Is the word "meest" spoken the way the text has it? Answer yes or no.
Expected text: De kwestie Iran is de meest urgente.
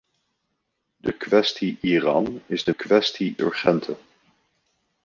no